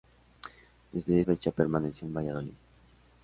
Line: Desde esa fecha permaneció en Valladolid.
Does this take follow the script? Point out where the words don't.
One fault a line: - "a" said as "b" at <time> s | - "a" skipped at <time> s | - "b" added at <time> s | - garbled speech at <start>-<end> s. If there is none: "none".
- "esa" skipped at 1.2 s